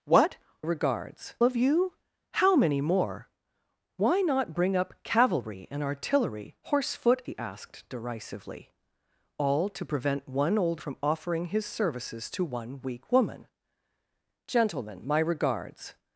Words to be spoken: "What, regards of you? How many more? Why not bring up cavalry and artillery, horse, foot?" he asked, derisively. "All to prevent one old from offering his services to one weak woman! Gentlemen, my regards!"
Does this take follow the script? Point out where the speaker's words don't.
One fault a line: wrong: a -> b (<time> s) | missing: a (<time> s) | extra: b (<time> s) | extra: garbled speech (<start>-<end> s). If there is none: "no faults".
no faults